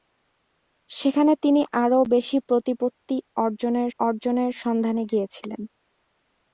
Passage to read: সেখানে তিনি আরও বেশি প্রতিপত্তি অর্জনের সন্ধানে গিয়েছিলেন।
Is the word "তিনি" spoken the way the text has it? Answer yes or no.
yes